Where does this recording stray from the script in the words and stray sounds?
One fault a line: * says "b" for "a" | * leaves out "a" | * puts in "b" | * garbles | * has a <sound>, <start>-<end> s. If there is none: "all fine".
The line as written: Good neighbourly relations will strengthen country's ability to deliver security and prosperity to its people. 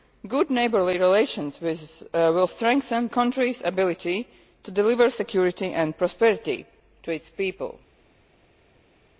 all fine